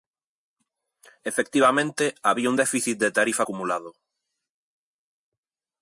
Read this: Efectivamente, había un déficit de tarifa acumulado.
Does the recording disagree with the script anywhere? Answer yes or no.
no